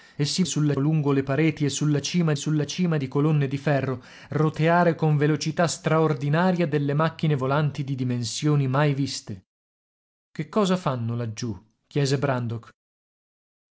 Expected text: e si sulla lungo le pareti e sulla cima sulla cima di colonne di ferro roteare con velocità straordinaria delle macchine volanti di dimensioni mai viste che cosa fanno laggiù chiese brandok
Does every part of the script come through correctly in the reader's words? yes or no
yes